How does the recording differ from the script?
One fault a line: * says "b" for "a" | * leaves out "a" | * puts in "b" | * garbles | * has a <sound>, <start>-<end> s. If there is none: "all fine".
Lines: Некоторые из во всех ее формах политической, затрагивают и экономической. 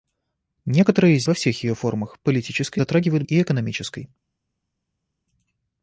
all fine